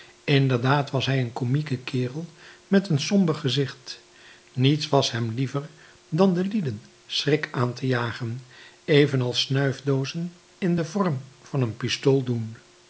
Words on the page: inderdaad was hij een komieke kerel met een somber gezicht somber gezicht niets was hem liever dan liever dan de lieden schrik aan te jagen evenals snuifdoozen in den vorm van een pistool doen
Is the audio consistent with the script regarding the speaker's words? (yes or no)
no